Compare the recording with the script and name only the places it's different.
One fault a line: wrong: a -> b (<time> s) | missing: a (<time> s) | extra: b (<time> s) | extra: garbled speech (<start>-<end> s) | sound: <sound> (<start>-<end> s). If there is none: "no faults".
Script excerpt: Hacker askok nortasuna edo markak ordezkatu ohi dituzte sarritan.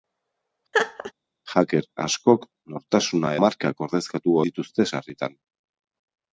sound: laugh (0.7-1.1 s)
missing: edo (3.3 s)
missing: ohi (4.4 s)